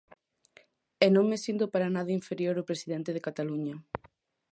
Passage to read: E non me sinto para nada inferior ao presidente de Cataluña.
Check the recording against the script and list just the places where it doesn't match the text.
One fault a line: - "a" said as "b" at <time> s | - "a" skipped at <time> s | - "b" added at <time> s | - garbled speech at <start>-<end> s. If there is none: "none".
none